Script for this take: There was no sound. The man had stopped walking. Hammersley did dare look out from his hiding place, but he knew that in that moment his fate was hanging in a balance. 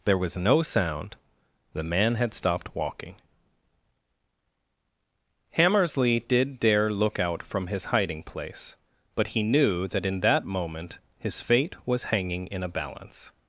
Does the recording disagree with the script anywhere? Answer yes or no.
no